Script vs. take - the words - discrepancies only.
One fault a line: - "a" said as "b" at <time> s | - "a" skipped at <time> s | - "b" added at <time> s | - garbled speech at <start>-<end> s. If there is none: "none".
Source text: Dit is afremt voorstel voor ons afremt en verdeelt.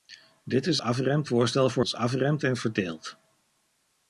none